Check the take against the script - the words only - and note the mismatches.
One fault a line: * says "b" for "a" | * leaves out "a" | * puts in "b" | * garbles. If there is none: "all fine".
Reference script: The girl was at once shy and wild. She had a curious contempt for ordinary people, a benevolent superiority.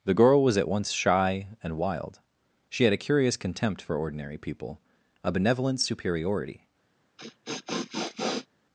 all fine